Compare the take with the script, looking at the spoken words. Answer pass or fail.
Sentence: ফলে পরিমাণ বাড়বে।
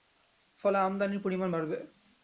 fail